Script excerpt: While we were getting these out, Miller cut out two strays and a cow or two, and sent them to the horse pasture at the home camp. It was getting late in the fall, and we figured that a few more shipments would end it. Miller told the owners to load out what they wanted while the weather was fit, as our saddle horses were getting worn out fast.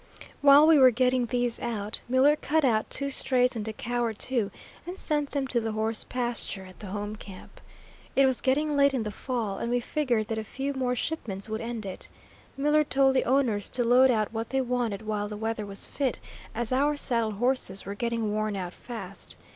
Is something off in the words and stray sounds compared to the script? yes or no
no